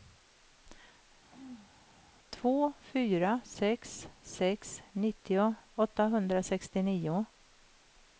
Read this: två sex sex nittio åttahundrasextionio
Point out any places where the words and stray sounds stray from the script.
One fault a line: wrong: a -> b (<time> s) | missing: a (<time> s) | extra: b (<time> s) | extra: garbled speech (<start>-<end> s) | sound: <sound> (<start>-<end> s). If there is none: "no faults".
sound: throat clearing (1.3-1.7 s)
extra: fyra (2.8 s)